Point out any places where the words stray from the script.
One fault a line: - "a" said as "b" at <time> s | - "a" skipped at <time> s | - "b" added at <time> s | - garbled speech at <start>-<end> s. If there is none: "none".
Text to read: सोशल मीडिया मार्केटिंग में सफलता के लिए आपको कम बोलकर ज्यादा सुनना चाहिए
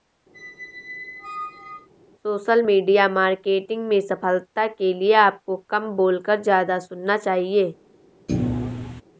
none